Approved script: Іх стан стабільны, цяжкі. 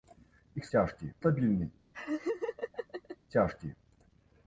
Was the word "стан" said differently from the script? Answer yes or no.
yes